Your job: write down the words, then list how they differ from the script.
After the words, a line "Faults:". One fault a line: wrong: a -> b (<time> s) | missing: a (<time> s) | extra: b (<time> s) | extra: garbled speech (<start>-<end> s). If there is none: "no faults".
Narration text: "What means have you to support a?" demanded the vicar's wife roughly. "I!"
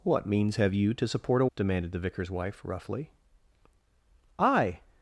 "What means have you to support a?" demanded the vicar's wife roughly. "I!"
Faults:
no faults